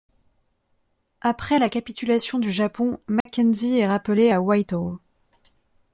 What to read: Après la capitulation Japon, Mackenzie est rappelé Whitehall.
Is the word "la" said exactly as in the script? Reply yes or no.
yes